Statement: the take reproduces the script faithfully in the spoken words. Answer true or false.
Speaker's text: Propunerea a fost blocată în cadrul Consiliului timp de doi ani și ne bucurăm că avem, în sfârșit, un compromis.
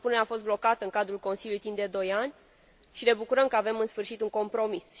true